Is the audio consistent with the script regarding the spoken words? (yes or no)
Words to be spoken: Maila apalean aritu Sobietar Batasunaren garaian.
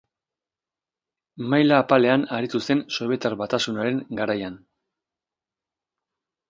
no